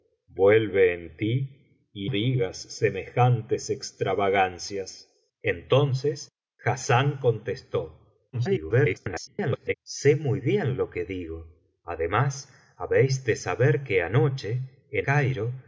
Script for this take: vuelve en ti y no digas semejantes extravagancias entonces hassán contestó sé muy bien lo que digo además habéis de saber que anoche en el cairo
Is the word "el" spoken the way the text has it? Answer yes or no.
no